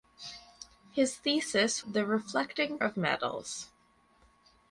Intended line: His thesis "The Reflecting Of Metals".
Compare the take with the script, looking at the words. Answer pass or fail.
pass